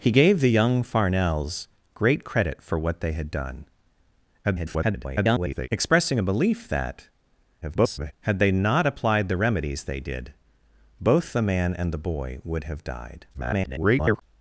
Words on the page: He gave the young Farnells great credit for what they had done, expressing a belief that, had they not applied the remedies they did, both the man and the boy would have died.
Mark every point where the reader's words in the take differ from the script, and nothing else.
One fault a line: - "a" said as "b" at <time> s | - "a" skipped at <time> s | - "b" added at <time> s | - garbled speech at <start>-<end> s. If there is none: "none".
- garbled speech at 4.4-5.7 s
- garbled speech at 7.6-8.1 s
- garbled speech at 13.3-14.2 s